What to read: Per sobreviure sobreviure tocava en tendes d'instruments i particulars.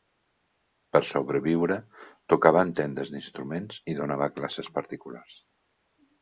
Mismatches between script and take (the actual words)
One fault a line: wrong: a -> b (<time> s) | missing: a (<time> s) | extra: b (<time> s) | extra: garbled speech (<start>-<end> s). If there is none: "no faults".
missing: sobreviure (1.8 s)
extra: donava classes (4.0 s)